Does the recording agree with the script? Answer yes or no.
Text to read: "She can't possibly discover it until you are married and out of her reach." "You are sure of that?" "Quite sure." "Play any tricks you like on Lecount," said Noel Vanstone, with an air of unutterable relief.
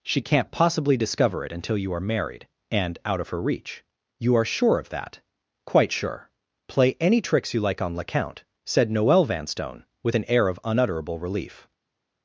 yes